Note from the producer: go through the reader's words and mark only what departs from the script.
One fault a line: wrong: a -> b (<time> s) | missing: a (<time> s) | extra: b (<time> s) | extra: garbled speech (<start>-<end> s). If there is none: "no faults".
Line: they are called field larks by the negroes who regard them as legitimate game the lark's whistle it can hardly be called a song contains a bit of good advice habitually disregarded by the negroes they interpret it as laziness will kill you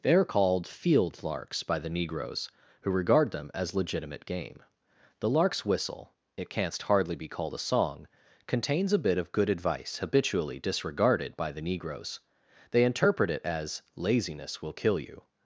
wrong: can -> canst (6.5 s)